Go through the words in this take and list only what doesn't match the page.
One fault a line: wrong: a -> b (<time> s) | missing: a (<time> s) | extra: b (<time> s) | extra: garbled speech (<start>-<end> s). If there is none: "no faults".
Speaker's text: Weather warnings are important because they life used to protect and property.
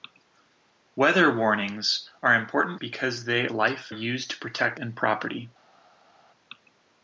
no faults